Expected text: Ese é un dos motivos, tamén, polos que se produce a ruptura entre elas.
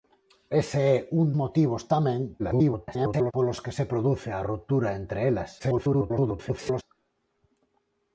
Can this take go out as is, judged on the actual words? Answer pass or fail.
fail